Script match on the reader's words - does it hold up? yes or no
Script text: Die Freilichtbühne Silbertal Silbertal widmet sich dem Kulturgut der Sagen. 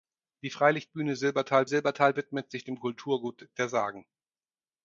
yes